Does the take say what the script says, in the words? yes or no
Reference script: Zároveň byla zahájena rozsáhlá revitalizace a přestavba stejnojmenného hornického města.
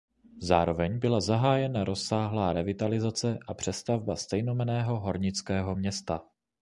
yes